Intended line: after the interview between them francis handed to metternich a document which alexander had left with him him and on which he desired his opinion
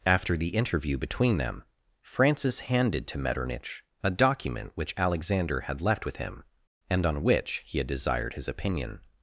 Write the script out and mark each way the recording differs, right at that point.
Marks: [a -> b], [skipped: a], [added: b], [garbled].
after the interview between them francis handed to metternich a document which alexander had left with him [skipped: him] and on which he [added: had] desired his opinion